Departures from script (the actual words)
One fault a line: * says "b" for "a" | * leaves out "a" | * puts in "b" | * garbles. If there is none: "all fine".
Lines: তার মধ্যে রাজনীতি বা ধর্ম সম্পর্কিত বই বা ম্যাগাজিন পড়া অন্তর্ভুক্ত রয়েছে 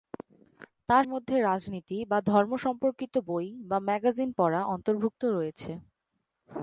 all fine